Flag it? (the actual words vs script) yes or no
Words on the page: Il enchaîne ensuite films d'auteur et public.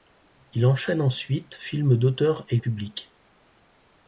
no